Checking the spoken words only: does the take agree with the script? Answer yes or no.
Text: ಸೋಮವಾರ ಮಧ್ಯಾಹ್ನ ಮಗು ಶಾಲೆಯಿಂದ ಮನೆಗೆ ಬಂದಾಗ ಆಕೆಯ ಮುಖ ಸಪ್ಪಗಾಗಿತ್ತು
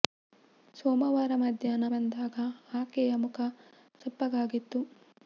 no